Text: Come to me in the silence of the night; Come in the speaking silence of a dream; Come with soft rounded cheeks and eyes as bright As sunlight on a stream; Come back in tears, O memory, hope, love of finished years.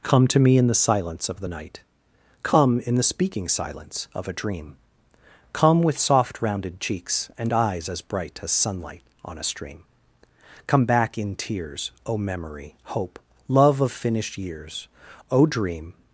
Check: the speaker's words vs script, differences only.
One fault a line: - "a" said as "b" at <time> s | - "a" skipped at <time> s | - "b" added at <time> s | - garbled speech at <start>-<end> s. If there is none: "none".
- "O dream" added at 15.3 s